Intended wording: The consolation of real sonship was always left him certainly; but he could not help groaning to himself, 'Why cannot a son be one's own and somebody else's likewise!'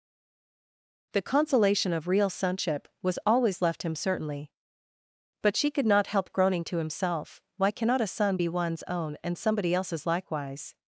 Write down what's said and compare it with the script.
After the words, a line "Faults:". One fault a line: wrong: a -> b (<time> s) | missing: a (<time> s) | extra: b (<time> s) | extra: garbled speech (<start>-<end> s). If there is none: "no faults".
The consolation of real sonship was always left him certainly; but she could not help groaning to himself, 'Why cannot a son be one's own and somebody else's likewise!'
Faults:
wrong: he -> she (5.6 s)